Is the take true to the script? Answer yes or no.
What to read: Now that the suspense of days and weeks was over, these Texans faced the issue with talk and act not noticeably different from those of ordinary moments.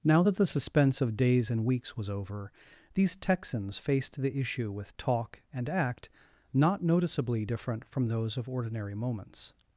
yes